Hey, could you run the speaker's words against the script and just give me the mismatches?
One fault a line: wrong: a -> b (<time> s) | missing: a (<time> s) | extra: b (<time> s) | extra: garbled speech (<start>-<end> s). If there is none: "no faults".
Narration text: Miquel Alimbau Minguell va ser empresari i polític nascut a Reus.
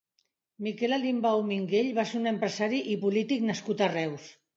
extra: un (2.2 s)